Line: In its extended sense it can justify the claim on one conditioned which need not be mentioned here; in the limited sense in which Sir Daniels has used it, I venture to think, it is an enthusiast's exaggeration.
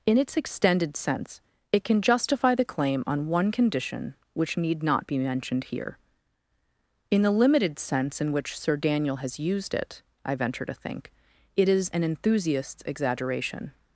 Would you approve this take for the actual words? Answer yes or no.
no